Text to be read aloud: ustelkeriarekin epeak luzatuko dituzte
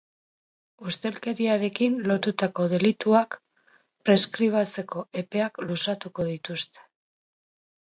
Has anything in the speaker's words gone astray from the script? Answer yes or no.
yes